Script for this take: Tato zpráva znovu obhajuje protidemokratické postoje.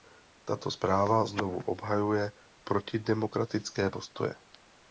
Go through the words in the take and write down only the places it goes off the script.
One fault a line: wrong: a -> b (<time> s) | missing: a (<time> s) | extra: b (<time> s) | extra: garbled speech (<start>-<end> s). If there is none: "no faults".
no faults